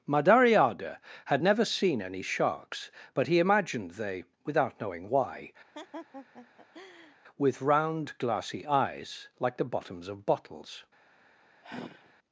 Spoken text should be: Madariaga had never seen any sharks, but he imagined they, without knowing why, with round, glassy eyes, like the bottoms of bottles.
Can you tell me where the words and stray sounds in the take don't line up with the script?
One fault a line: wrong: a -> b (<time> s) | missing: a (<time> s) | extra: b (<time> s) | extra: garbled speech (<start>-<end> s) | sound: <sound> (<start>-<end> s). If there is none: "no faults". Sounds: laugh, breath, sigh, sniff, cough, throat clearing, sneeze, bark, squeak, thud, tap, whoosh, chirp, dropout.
sound: laugh (5.7-7.2 s)
sound: sigh (11.6-12.1 s)